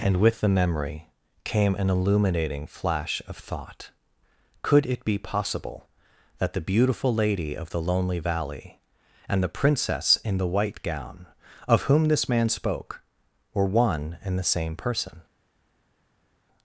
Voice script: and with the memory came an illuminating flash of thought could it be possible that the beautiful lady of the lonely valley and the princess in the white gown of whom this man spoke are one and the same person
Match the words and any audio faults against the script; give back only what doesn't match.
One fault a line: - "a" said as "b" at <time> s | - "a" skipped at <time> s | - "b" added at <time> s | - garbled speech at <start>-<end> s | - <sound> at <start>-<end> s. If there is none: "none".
- "are" said as "were" at 13.5 s